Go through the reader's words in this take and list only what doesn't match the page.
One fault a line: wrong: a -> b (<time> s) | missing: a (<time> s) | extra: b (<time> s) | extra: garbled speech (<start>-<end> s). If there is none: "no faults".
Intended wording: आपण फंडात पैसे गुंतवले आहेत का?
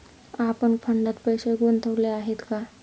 no faults